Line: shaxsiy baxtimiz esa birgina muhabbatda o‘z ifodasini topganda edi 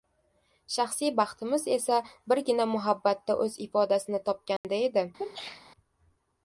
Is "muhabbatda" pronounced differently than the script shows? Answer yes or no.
no